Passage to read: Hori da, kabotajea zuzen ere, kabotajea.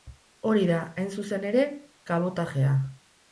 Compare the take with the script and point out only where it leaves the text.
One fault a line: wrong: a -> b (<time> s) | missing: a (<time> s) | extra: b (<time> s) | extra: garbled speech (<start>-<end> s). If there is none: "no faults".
wrong: kabotajea -> hain (1.0 s)